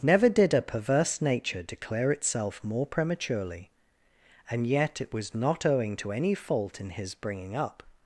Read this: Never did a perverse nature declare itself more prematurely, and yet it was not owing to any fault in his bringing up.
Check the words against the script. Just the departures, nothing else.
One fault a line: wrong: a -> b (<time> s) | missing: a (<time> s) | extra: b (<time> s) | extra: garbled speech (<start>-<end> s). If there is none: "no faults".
no faults